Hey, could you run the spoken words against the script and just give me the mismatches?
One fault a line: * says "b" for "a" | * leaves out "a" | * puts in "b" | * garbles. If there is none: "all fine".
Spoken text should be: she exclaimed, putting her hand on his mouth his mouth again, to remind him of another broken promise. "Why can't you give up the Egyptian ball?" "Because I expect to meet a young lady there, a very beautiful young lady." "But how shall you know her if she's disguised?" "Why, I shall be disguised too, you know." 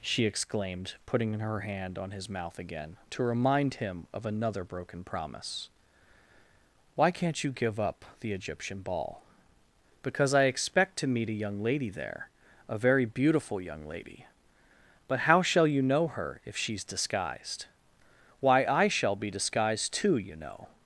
* leaves out "his mouth"